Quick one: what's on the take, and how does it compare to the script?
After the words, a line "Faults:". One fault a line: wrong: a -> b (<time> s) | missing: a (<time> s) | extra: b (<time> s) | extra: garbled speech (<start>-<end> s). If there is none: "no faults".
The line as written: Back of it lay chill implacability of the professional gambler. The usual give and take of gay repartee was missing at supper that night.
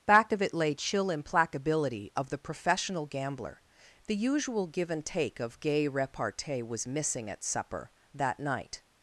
Back of it lay chill implacability of the professional gambler. The usual give and take of gay repartee was missing at supper that night.
Faults:
no faults